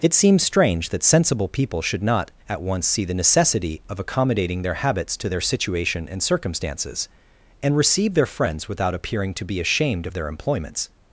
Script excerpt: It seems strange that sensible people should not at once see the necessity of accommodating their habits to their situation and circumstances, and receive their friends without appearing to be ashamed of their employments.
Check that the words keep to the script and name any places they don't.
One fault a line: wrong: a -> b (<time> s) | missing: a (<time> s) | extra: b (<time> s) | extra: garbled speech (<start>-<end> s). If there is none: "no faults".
no faults